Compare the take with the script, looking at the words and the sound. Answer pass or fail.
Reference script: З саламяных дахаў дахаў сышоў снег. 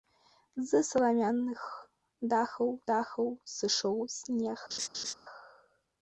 fail